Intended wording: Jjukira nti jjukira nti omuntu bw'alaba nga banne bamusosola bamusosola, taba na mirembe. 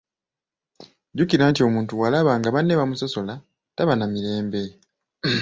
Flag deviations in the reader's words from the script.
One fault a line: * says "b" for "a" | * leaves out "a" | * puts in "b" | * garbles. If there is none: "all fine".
* leaves out "jjukira nti"
* leaves out "bamusosola"